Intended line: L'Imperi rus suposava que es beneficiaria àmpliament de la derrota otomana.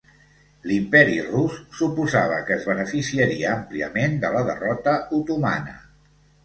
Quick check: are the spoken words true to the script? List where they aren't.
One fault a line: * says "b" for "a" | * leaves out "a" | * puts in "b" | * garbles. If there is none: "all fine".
all fine